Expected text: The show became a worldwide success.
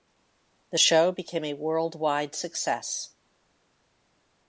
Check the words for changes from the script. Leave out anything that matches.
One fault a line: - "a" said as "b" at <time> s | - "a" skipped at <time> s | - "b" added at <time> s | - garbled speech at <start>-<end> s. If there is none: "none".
none